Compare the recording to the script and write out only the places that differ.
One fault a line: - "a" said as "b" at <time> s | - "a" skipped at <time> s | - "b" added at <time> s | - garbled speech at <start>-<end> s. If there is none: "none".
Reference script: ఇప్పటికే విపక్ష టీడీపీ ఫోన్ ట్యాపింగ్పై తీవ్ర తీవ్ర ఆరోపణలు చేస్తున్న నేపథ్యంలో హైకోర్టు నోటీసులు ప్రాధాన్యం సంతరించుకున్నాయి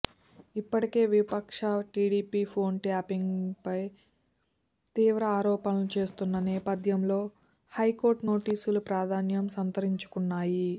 - "తీవ్ర" skipped at 5.2 s